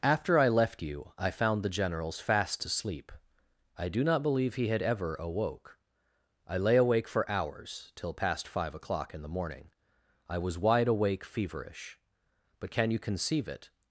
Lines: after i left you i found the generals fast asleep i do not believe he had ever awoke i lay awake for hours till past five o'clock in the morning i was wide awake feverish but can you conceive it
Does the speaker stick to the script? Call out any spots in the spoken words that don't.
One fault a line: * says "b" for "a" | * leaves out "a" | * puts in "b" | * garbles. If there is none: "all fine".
all fine